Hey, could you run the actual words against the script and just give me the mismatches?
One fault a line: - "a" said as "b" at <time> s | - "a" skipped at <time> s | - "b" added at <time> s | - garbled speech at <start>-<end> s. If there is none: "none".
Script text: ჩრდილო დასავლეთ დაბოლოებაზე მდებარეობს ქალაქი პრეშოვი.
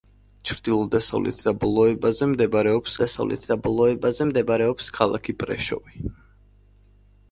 - "დასავლეთ დაბოლოებაზე მდებარეობს" added at 3.0 s